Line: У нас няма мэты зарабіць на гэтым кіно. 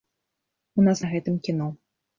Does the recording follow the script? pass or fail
fail